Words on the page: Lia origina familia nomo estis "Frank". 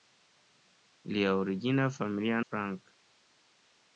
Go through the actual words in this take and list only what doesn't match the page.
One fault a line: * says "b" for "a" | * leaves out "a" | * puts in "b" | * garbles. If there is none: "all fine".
* leaves out "nomo estis"